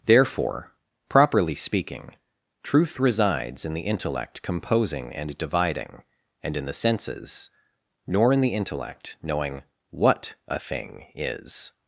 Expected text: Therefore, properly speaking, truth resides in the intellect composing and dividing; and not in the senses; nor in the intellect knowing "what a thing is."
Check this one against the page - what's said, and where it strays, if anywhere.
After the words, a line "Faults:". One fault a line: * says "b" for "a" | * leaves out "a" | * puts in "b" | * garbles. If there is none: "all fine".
Therefore, properly speaking, truth resides in the intellect composing and dividing; and in the senses; nor in the intellect knowing "what a thing is."
Faults:
* leaves out "not"